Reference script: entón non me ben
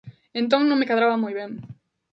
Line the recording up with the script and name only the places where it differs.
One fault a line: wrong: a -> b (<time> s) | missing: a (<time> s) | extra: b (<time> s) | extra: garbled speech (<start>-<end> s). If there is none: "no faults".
extra: cadraba moi (0.9 s)